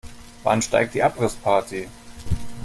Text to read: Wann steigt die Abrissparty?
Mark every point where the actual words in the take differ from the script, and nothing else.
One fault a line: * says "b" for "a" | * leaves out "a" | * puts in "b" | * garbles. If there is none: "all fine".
all fine